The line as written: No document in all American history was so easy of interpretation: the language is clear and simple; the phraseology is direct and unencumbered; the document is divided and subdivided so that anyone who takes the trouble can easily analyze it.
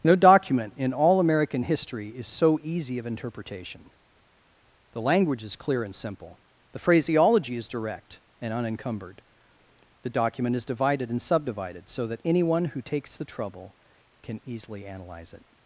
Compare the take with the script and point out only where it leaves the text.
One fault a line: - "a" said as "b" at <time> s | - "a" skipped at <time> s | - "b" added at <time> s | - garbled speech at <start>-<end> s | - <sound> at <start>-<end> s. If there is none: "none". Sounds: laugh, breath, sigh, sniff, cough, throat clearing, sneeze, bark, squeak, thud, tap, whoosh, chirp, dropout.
- "was" said as "is" at 2.1 s